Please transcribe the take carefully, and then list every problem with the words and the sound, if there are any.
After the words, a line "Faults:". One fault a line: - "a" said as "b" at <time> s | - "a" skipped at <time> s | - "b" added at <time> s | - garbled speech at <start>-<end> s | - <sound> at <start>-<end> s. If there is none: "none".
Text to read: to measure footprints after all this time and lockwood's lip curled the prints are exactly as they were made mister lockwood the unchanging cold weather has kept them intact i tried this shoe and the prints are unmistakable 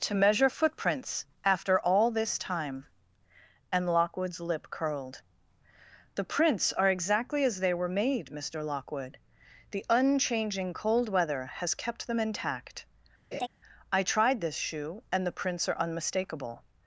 to measure footprints after all this time and lockwood's lip curled the prints are exactly as they were made mister lockwood the unchanging cold weather has kept them intact i tried this shoe and the prints are unmistakable
Faults:
- laugh at 13.3-13.5 s